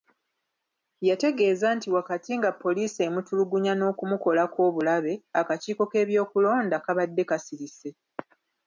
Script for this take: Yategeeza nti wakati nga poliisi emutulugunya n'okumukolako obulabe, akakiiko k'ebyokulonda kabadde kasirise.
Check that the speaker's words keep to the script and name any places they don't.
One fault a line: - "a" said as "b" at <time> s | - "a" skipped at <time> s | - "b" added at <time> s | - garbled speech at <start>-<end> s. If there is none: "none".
none